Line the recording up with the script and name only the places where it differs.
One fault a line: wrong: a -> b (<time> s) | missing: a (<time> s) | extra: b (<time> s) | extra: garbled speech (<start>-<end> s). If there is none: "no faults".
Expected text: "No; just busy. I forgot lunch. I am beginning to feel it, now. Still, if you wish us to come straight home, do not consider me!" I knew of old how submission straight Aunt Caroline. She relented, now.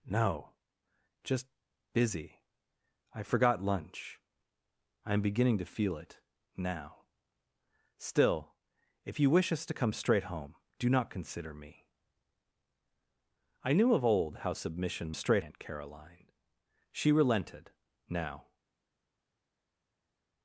no faults